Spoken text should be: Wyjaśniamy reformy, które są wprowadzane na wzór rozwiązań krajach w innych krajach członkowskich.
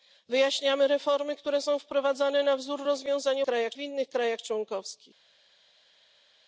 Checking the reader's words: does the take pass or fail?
pass